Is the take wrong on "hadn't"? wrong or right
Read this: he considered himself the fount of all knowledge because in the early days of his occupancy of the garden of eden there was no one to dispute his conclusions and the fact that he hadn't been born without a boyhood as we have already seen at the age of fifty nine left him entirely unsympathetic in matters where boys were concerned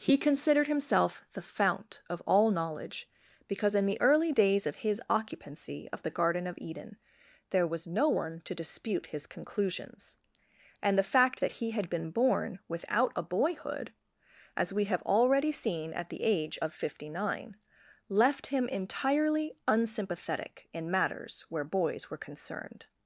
wrong